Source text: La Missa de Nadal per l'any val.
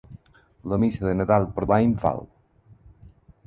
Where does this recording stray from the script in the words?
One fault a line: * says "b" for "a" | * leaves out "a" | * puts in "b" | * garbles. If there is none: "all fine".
all fine